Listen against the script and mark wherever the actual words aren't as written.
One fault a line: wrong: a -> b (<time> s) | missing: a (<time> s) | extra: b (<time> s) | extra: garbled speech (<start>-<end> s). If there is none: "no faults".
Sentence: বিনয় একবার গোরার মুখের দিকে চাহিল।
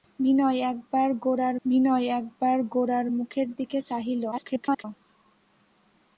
extra: বিনয় একবার গোরার (1.6 s)
extra: garbled speech (4.3-4.8 s)